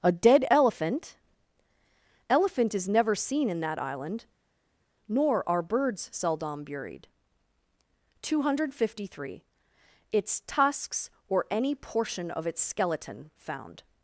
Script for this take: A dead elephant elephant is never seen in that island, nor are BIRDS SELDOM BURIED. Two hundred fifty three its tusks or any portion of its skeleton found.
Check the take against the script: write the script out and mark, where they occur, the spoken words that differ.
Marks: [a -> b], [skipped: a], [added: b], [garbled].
A dead elephant elephant is never seen in that island, nor are BIRDS SELDOM BURIED. Two hundred fifty three its tusks or any portion of its skeleton found.